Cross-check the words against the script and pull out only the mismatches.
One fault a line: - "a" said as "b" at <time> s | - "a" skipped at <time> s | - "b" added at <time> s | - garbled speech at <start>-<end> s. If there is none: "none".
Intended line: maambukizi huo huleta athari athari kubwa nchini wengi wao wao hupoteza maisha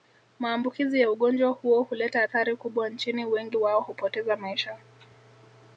- "ya ugonjwa" added at 1.0 s
- "athari" skipped at 2.6 s
- "wao" skipped at 3.8 s